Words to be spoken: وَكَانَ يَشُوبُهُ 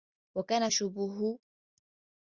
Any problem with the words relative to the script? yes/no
no